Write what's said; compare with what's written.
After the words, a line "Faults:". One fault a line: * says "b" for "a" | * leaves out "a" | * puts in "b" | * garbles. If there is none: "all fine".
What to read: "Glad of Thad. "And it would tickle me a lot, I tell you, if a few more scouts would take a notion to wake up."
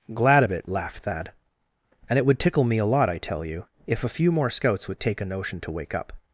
"Glad of it," laughed Thad. "And it would tickle me a lot, I tell you, if a few more scouts would take a notion to wake up."
Faults:
* puts in "it laughed"